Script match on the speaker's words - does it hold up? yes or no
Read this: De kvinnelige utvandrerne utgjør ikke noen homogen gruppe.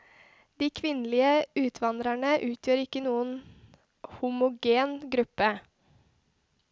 yes